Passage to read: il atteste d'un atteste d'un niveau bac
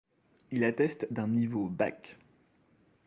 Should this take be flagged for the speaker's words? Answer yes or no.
yes